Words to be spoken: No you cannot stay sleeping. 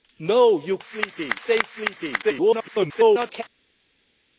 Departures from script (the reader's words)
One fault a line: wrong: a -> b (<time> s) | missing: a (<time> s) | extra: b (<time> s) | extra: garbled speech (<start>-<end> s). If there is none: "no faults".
wrong: cannot -> sleeping (0.8 s)
extra: garbled speech (2.2-3.4 s)